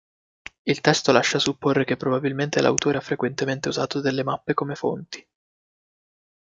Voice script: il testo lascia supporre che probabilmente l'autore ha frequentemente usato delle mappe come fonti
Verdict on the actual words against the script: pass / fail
pass